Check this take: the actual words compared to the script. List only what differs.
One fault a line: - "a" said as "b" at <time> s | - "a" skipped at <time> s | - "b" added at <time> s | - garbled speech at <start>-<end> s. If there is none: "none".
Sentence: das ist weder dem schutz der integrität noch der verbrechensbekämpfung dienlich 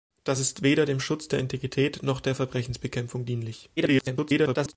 - garbled speech at 3.8-4.7 s